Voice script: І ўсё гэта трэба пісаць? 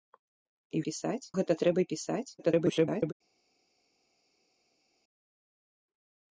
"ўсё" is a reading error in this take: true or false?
true